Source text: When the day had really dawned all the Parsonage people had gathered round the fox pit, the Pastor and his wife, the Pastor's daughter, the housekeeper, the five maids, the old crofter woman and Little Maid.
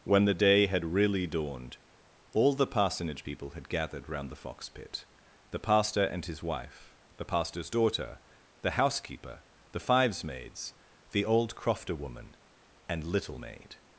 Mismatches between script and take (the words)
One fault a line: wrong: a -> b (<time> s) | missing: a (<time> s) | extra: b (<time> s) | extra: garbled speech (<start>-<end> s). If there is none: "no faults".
wrong: five -> fives (9.8 s)